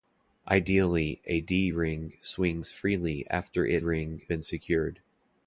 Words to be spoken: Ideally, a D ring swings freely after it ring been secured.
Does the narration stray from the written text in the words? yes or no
no